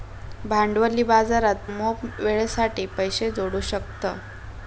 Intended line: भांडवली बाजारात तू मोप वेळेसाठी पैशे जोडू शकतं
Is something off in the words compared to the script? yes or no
yes